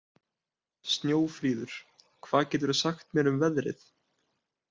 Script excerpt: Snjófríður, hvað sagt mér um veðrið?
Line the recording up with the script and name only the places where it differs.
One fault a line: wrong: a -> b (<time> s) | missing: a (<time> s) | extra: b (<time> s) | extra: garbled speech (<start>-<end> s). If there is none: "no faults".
extra: geturðu (2.5 s)